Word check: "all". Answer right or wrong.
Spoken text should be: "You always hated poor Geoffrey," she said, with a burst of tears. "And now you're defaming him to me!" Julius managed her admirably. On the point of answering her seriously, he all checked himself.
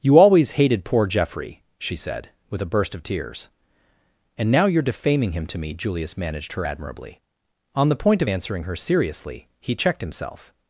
wrong